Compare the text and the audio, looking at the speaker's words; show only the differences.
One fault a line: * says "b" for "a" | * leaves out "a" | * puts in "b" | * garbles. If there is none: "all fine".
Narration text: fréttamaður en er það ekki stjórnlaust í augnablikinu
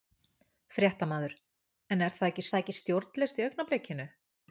* puts in "það ekki"